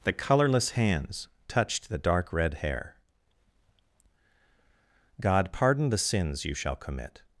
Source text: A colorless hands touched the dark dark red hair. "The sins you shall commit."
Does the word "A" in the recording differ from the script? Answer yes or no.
yes